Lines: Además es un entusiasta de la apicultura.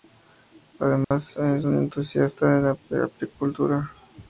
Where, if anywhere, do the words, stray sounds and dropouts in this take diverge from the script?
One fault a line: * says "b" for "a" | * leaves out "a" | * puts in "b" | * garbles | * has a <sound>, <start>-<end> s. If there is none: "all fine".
* has a dropout, 1.0-1.1 s